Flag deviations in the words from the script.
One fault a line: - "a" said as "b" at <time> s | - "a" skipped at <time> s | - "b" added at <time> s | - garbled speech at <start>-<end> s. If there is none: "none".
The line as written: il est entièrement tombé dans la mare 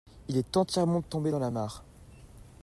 none